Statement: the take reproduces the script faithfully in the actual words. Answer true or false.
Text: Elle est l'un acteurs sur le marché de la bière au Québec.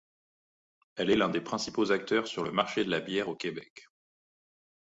false